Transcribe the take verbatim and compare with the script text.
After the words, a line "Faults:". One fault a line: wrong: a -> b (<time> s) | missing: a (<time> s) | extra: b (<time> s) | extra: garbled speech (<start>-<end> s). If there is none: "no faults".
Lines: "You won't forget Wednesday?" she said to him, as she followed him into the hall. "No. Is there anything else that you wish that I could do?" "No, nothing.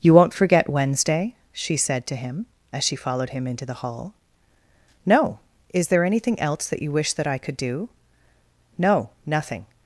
"You won't forget Wednesday?" she said to him, as she followed him into the hall. "No. Is there anything else that you wish that I could do?" "No, nothing.
Faults:
no faults